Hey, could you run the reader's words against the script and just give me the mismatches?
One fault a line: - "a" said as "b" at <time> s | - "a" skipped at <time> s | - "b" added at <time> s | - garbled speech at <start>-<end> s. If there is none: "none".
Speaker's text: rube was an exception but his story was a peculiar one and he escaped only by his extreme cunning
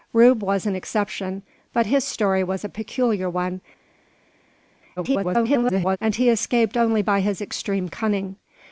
- garbled speech at 5.0-6.0 s